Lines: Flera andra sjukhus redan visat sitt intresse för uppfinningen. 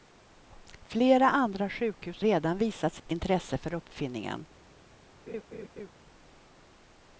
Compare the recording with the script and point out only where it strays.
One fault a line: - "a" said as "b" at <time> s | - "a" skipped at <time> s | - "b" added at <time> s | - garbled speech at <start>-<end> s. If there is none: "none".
none